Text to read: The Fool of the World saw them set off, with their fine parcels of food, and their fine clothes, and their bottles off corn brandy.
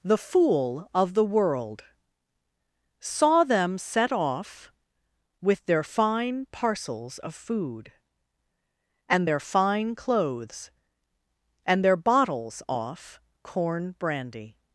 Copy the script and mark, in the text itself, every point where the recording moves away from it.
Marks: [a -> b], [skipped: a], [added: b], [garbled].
The Fool of the World saw them set off, with their fine parcels of food, and their fine clothes, and their bottles off corn brandy.